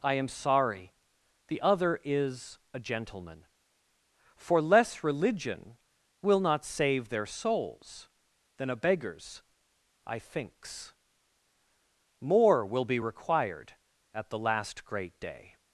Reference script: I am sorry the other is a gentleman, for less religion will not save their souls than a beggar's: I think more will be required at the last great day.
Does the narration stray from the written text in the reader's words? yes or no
yes